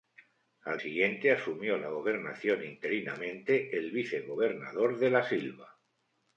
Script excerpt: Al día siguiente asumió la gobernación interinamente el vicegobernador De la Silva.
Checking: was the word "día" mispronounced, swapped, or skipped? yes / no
yes